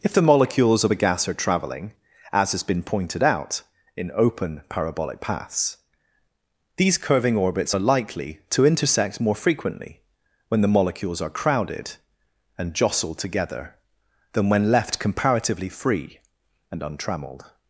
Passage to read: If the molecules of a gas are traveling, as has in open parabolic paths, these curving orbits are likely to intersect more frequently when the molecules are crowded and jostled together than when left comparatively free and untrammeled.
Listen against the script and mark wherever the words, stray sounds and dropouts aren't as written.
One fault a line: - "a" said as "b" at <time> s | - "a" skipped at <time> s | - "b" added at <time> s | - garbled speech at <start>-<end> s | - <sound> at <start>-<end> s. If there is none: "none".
- "been pointed out" added at 2.6 s